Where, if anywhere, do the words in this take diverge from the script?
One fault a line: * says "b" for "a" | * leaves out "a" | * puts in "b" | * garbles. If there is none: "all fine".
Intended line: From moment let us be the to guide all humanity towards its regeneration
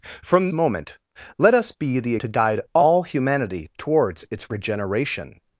all fine